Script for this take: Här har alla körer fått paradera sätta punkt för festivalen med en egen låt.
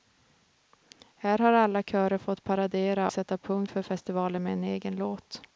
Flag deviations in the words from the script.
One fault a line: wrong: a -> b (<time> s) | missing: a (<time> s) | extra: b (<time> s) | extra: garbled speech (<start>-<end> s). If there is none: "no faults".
no faults